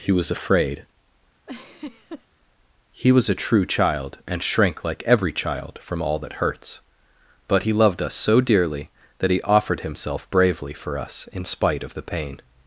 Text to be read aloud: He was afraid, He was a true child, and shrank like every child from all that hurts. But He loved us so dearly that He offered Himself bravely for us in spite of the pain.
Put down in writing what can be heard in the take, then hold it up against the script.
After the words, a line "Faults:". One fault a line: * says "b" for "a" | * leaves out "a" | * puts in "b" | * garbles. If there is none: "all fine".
He was afraid, He was a true child, and shrank like every child from all that hurts. But He loved us so dearly that He offered Himself bravely for us in spite of the pain.
Faults:
all fine